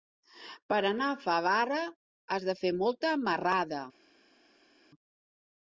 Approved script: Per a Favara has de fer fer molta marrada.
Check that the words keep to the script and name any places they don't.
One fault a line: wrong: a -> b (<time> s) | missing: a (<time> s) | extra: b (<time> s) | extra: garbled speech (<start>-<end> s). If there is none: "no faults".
extra: anar (0.9 s)
missing: fer (2.7 s)